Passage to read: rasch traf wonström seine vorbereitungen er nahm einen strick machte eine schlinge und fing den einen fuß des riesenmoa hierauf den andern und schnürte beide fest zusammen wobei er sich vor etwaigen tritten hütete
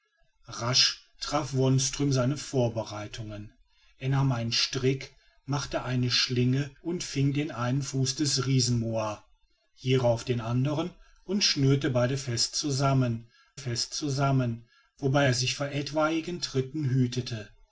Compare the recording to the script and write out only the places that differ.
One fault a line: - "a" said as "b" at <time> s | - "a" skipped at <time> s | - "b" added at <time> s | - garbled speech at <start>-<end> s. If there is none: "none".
- "fest zusammen" added at 13.6 s